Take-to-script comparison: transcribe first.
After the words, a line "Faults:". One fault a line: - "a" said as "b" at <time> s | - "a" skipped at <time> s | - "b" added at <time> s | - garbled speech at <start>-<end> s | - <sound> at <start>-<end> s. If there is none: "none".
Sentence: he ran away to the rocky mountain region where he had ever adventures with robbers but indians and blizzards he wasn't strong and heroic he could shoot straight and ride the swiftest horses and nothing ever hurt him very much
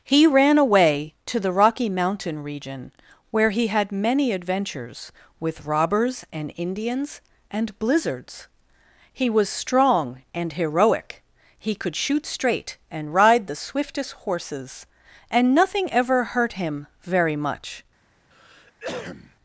he ran away to the rocky mountain region where he had many adventures with robbers and indians and blizzards he was strong and heroic he could shoot straight and ride the swiftest horses and nothing ever hurt him very much
Faults:
- "ever" said as "many" at 3.9 s
- "but" said as "and" at 6.3 s
- "wasn't" said as "was" at 9.3 s
- cough at 18.3-19.4 s